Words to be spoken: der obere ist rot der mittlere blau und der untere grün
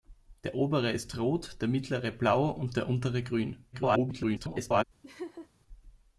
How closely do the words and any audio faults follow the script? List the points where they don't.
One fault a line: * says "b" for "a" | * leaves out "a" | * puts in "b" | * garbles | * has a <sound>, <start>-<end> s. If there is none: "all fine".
* garbles
* has a laugh, 5.0-5.5 s